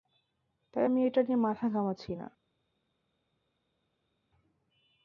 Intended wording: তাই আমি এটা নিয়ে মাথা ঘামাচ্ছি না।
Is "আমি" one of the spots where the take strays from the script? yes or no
no